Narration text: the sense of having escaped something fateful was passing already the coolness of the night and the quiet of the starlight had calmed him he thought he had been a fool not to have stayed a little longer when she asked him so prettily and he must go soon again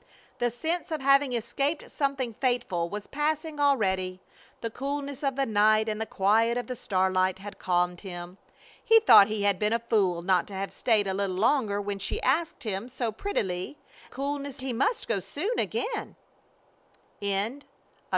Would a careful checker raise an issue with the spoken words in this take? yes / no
yes